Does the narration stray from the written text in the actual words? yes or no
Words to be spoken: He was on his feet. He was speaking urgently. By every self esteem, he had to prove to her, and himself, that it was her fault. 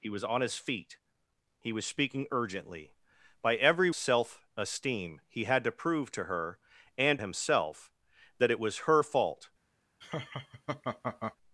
no